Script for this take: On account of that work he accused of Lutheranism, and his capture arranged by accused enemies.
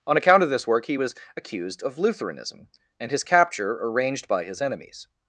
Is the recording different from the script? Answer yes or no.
yes